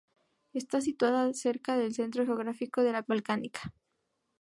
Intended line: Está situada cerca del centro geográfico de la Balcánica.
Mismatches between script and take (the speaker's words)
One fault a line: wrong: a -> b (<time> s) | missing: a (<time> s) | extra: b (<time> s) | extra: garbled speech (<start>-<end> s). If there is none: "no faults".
no faults